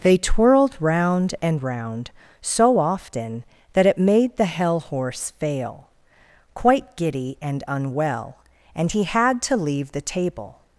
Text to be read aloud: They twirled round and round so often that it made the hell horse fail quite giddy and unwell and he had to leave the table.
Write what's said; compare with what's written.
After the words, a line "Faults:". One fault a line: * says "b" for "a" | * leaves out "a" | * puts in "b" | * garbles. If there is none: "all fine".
They twirled round and round so often that it made the hell horse fail quite giddy and unwell and he had to leave the table.
Faults:
all fine